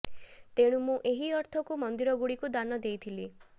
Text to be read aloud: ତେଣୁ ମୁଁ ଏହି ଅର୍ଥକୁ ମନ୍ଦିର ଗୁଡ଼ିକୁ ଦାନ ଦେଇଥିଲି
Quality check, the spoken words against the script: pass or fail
pass